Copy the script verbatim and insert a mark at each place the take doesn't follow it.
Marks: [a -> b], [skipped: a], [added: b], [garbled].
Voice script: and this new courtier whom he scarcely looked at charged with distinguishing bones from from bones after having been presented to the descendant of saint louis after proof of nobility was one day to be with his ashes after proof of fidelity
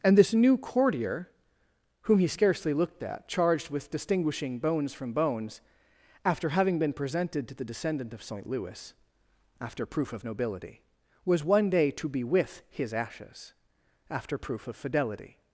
and this new courtier whom he scarcely looked at charged with distinguishing bones from [skipped: from] bones after having been presented to the descendant of saint louis after proof of nobility was one day to be with his ashes after proof of fidelity